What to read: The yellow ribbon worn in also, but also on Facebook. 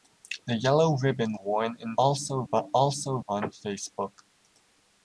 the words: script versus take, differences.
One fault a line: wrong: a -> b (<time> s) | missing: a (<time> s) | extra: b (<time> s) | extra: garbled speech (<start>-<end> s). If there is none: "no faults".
no faults